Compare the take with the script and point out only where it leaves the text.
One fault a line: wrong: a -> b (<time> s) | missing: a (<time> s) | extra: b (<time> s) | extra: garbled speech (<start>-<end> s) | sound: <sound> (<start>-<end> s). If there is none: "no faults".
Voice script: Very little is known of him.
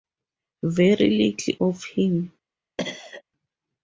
missing: is known (1.5 s)
sound: cough (2.8-3.2 s)